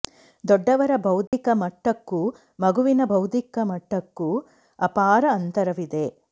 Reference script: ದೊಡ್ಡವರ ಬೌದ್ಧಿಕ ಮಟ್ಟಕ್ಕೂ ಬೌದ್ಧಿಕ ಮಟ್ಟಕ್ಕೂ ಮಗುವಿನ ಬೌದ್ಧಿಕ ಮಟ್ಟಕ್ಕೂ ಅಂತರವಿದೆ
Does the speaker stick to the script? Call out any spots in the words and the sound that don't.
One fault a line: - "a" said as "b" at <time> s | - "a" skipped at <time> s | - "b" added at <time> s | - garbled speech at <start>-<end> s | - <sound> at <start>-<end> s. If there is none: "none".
- dropout at 1.3-1.3 s
- "ಬೌದ್ಧಿಕ ಮಟ್ಟಕ್ಕೂ" skipped at 2.2 s
- "ಅಪಾರ" added at 4.8 s